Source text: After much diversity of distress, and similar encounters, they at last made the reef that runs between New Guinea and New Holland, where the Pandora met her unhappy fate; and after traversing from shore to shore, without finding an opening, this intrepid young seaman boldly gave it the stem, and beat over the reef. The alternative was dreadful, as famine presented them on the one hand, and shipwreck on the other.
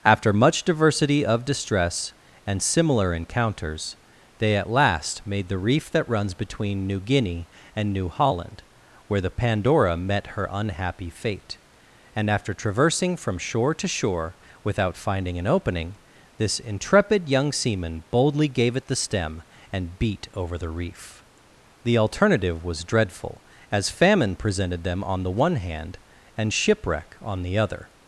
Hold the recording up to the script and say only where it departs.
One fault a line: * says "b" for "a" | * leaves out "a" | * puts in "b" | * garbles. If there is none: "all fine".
all fine